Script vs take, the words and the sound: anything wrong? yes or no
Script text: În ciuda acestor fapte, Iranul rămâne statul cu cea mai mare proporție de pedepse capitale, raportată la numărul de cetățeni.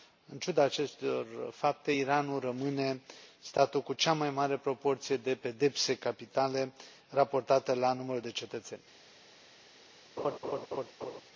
yes